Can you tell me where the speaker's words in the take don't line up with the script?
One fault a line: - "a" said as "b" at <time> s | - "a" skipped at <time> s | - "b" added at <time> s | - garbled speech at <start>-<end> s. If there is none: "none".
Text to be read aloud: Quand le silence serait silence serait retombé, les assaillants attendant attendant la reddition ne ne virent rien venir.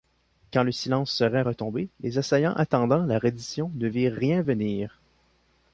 - "silence serait" skipped at 1.4 s
- "attendant" skipped at 3.0 s
- "ne" skipped at 3.9 s